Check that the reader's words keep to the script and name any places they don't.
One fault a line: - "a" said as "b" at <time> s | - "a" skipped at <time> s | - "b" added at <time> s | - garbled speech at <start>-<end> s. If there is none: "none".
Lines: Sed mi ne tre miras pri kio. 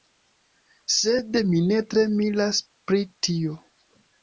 - "kio" said as "tio" at 3.3 s